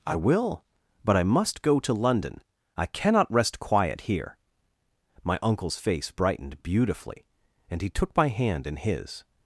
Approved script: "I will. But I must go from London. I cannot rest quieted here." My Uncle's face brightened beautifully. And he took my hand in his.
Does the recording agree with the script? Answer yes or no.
no